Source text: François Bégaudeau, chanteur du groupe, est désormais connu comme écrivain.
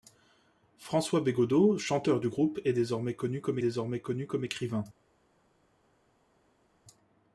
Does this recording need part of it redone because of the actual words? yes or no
yes